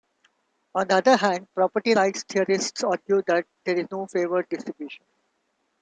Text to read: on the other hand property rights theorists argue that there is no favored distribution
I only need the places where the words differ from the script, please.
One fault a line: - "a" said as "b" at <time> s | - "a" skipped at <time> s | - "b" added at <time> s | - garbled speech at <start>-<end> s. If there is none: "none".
none